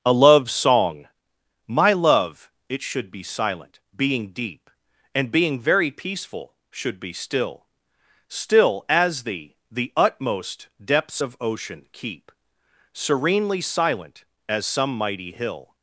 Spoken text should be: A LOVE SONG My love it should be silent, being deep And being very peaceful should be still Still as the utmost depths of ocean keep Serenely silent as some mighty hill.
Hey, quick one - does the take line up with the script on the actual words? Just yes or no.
no